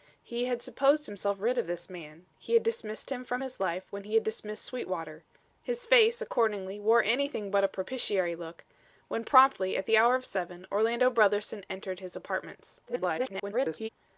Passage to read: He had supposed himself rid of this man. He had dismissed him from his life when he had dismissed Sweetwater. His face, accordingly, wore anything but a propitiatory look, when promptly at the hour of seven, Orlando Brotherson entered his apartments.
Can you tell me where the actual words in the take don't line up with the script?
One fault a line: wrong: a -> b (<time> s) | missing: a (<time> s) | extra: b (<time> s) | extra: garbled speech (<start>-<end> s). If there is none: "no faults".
extra: garbled speech (12.9-13.9 s)